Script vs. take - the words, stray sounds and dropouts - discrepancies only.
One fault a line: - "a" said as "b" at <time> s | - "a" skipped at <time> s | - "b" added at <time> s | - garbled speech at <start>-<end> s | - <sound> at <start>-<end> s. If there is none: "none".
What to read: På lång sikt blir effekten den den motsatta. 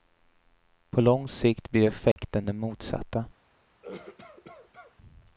- dropout at 2.1-2.2 s
- "den" skipped at 2.6 s
- cough at 3.8-5.0 s